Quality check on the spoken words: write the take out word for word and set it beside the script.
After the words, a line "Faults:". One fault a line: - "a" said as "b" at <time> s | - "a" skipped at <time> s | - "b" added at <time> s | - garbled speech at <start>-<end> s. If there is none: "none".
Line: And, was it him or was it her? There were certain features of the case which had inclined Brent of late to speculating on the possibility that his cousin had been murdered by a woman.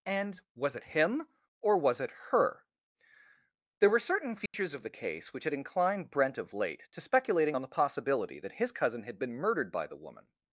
And, was it him or was it her? There were certain features of the case which had inclined Brent of late to speculating on the possibility that his cousin had been murdered by the woman.
Faults:
- "a" said as "the" at 9.9 s